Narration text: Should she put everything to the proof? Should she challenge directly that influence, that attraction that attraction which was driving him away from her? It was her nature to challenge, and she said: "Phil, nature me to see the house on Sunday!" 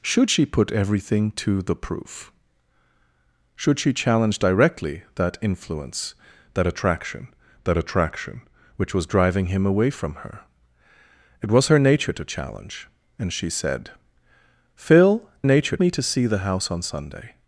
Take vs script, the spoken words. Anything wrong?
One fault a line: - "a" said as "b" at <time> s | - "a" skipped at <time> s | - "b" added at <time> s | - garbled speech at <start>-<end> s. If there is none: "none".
none